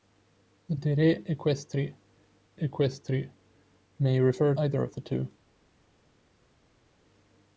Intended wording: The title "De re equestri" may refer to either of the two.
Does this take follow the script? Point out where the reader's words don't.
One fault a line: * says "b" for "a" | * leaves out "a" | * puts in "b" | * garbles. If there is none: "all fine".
* leaves out "title"
* puts in "equestri"
* leaves out "to"